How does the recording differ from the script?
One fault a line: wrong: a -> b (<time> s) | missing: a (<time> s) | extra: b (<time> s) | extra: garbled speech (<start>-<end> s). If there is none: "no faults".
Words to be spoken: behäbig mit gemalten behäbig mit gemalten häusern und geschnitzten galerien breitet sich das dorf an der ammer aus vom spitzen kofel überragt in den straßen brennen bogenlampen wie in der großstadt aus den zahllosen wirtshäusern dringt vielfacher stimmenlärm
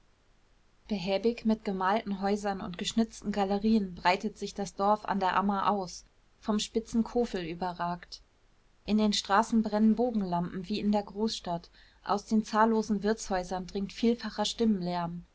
missing: behäbig mit gemalten (2.2 s)